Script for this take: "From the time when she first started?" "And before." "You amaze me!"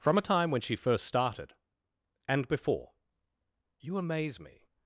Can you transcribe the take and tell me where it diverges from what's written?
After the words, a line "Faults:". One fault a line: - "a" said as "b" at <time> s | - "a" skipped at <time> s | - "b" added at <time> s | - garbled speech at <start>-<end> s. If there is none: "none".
"From a time when she first started?" "And before." "You amaze me!"
Faults:
- "the" said as "a" at 0.2 s